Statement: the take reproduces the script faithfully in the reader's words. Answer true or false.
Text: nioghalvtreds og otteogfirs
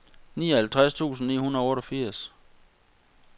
false